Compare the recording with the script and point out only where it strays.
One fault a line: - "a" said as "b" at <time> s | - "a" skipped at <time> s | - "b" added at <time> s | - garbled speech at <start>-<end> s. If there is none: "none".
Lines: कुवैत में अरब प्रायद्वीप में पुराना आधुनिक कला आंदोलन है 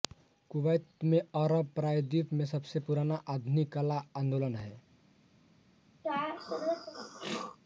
- "सबसे" added at 2.5 s